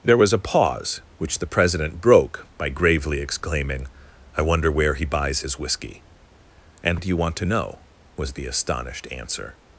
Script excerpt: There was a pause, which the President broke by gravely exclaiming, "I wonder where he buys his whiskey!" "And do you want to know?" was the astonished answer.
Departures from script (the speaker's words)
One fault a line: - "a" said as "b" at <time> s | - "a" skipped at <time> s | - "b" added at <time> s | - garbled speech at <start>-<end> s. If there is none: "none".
none